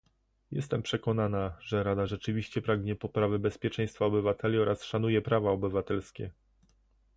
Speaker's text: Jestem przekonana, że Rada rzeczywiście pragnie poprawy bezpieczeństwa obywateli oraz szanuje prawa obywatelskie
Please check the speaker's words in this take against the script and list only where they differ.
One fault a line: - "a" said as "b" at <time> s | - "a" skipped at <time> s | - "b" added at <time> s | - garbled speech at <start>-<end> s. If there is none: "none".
none